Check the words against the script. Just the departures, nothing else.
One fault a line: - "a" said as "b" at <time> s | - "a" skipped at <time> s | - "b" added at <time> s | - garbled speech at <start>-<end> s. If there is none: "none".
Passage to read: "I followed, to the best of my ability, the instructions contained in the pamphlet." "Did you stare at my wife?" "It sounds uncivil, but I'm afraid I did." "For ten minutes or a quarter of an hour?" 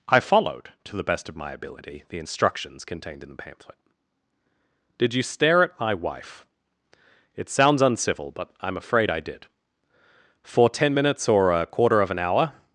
none